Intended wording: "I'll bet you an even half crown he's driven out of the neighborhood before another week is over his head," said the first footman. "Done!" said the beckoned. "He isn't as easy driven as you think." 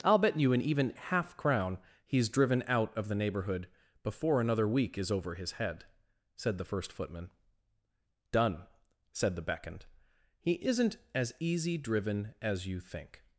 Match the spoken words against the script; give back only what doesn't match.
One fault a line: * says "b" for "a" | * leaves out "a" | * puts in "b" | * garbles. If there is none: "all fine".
all fine